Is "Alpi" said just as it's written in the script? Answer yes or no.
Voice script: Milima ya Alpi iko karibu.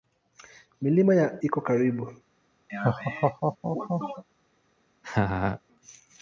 no